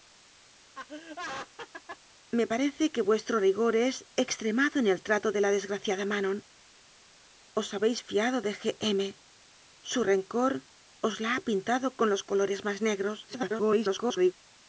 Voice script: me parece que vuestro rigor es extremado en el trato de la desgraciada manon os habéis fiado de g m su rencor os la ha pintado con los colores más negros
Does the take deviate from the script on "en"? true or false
false